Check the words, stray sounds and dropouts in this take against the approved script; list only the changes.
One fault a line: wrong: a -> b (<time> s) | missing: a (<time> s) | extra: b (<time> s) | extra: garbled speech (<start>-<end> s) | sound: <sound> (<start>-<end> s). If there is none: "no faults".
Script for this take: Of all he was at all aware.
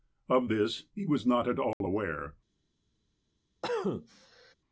wrong: all -> this (0.5 s)
extra: not (1.2 s)
sound: dropout (1.7-1.8 s)
sound: cough (3.6-4.5 s)